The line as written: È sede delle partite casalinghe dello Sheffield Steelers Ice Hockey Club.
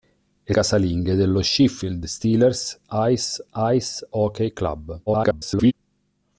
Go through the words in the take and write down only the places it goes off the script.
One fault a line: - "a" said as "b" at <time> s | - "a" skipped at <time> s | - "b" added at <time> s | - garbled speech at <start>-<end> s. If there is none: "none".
- "sede delle partite" skipped at 0.5 s
- "Ice" added at 3.5 s
- garbled speech at 5.1-5.7 s